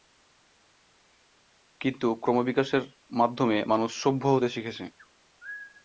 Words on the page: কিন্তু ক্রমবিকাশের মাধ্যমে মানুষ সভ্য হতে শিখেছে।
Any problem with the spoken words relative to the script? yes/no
no